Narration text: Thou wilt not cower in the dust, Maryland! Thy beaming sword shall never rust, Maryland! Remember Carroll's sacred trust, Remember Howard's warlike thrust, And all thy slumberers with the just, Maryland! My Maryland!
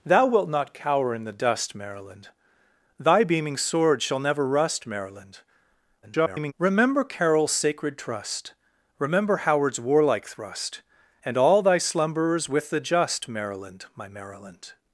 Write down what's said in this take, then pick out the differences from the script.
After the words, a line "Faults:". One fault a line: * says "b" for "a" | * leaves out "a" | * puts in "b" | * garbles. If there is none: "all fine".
Thou wilt not cower in the dust, Maryland! Thy beaming sword shall never rust, Maryland! [garbled] Remember Carroll's sacred trust, Remember Howard's warlike thrust, And all thy slumberers with the just, Maryland! My Maryland!
Faults:
* garbles